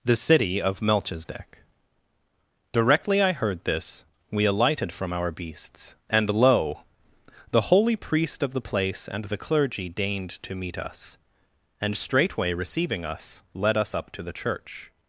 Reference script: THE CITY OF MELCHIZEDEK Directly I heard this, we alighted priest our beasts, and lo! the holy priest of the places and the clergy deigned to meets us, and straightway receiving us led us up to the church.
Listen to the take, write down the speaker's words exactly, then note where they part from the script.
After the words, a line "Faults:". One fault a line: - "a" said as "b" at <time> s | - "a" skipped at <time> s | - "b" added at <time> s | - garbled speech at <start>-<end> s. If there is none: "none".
THE CITY OF MELCHIZEDEK Directly I heard this, we alighted from our beasts, and lo! the holy priest of the place and the clergy deigned to meet us, and straightway receiving us led us up to the church.
Faults:
- "priest" said as "from" at 4.9 s
- "places" said as "place" at 8.6 s
- "meets" said as "meet" at 10.6 s